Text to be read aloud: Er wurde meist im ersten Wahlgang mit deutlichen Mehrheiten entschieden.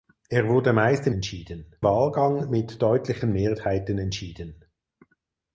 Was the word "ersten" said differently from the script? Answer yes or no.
yes